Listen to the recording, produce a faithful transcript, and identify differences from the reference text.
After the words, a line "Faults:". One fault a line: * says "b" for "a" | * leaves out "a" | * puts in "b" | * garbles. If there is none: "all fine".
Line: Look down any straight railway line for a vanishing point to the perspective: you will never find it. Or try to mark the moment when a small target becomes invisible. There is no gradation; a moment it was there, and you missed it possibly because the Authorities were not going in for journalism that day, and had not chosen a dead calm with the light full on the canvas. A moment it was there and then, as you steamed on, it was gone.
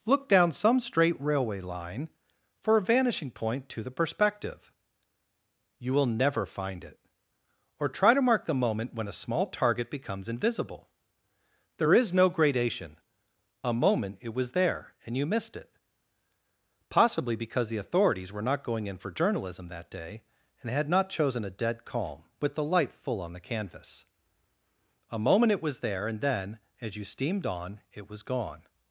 Look down some straight railway line for a vanishing point to the perspective: you will never find it. Or try to mark the moment when a small target becomes invisible. There is no gradation; a moment it was there, and you missed it possibly because the Authorities were not going in for journalism that day, and had not chosen a dead calm with the light full on the canvas. A moment it was there and then, as you steamed on, it was gone.
Faults:
* says "some" for "any"